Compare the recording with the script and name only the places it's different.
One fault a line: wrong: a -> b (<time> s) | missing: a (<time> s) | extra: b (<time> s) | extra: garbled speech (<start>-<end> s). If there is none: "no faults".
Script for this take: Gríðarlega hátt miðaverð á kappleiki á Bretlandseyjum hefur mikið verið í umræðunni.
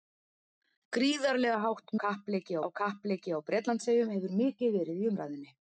wrong: miðaverð -> kappleiki (2.0 s)